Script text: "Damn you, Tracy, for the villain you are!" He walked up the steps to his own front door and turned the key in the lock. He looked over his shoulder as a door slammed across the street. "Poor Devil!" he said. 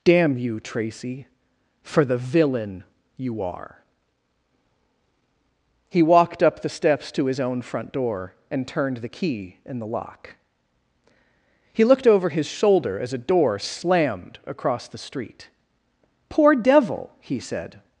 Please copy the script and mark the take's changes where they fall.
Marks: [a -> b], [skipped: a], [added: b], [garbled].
"Damn you, Tracy, for the villain you are!" He walked up the steps to his own front door and turned the key in the lock. He looked over his shoulder as a door slammed across the street. "Poor Devil!" he said.